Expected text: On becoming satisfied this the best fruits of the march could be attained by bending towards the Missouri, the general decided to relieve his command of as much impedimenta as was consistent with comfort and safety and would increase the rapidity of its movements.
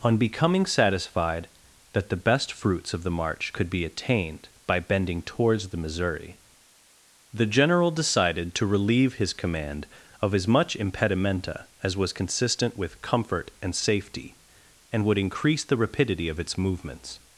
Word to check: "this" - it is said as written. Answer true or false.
false